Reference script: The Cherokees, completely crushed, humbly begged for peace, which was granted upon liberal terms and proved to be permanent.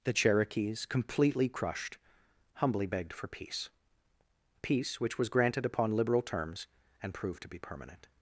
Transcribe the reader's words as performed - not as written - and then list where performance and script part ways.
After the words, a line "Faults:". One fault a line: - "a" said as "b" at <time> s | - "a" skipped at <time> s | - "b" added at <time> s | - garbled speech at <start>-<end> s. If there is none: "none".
The Cherokees, completely crushed, humbly begged for peace peace, which was granted upon liberal terms and proved to be permanent.
Faults:
- "peace" added at 4.6 s